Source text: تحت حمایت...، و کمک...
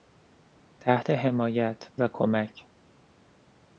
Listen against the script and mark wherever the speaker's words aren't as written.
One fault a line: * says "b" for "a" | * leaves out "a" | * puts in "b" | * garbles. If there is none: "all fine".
all fine